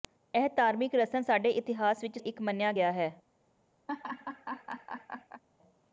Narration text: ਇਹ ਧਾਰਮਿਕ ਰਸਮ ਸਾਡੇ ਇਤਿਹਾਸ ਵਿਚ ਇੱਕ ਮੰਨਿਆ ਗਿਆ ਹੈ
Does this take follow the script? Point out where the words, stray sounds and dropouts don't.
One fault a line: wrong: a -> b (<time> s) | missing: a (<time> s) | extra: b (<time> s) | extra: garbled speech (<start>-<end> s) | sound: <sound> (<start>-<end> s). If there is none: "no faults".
sound: laugh (3.9-5.4 s)